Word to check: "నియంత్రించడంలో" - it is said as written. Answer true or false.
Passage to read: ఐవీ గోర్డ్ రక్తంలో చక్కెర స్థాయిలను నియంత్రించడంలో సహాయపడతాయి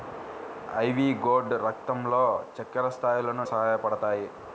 false